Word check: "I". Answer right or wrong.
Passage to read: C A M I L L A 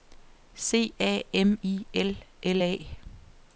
right